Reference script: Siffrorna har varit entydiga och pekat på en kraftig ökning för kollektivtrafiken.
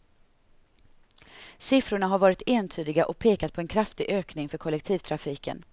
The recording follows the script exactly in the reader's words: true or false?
true